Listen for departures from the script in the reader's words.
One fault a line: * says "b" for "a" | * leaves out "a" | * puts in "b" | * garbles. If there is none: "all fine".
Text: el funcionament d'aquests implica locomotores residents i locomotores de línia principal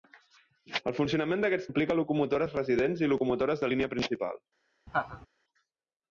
all fine